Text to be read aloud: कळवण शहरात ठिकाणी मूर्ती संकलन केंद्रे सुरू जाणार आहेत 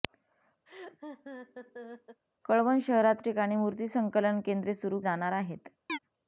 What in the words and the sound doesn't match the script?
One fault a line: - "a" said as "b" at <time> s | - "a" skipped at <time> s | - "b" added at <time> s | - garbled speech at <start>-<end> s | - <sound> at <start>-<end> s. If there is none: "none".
- laugh at 0.7-2.2 s
- chirp at 5.9-6.0 s